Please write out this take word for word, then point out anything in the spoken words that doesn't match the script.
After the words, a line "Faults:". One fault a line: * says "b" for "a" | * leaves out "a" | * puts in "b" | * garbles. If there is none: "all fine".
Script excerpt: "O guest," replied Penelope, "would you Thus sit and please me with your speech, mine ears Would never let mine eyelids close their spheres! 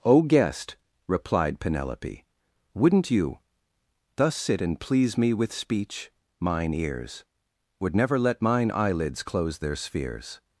"O guest," replied Penelope, "wouldn't you Thus sit and please me with speech, mine ears Would never let mine eyelids close their spheres!
Faults:
* says "wouldn't" for "would"
* leaves out "your"